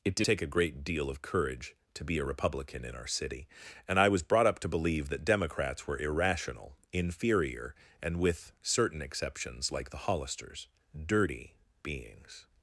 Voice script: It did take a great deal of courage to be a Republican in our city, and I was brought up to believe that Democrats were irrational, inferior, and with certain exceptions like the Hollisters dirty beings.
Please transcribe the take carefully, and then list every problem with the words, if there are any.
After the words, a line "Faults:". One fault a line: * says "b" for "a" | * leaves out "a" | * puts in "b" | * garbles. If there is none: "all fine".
It did take a great deal of courage to be a Republican in our city, and I was brought up to believe that Democrats were irrational, inferior, and with certain exceptions like the Hollisters dirty beings.
Faults:
all fine